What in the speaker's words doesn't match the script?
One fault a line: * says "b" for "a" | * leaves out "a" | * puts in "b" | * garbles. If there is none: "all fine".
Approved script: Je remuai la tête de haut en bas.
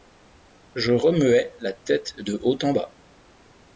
all fine